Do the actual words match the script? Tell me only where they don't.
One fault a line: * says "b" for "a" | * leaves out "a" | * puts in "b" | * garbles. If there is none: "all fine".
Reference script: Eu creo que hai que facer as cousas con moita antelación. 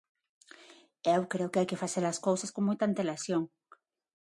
all fine